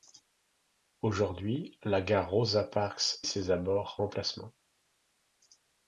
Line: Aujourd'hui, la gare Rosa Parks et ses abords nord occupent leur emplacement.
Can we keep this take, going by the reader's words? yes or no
no